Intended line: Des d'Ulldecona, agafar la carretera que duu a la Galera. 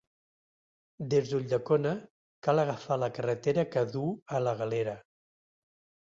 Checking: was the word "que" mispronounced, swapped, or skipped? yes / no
no